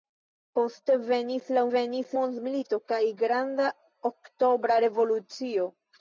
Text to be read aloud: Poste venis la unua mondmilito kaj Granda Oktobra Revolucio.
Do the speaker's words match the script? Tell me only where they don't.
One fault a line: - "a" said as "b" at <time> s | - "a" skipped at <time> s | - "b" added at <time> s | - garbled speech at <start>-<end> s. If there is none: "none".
- "unua" said as "venis" at 1.7 s